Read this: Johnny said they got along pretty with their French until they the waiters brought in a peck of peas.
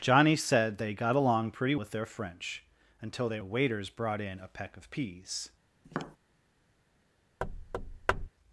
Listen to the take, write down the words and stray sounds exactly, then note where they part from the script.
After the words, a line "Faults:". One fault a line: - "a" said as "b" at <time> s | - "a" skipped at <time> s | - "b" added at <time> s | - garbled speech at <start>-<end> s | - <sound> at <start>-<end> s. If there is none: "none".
Johnny said they got along pretty with their French until they the waiters brought in a peck of peas.
Faults:
- tap at 5.8-6.2 s
- thud at 7.4-8.3 s